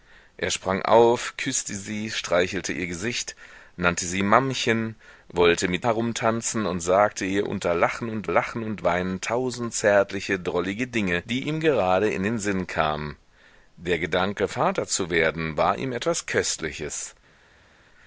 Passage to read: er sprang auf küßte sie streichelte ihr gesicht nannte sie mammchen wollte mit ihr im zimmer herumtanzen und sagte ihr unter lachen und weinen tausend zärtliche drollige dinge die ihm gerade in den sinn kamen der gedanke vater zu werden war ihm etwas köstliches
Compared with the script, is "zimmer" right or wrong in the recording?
wrong